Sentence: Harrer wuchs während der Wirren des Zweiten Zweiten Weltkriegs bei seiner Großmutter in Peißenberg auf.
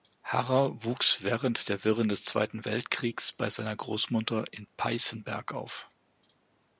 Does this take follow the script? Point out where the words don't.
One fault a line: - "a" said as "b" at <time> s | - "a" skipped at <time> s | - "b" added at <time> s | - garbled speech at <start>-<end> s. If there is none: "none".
- "Zweiten" skipped at 2.6 s